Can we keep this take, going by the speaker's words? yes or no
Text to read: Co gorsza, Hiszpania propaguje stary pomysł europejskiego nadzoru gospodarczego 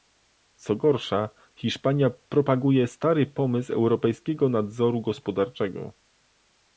yes